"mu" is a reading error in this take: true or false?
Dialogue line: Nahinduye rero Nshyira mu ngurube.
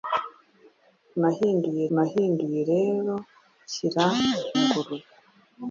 true